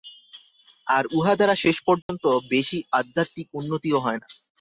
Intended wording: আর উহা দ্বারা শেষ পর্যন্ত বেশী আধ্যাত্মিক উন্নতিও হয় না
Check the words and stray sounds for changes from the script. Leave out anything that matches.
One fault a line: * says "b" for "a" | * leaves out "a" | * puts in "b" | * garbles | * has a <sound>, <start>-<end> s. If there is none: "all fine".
* has a dropout, 2.0-2.1 s